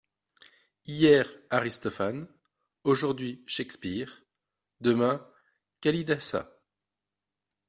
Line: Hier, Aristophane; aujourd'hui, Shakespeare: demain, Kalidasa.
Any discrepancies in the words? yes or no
no